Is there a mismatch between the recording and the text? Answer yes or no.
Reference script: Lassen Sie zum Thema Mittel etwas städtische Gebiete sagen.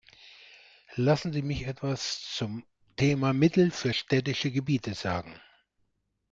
yes